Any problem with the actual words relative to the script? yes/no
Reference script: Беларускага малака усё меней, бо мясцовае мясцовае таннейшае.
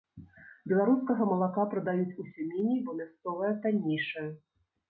yes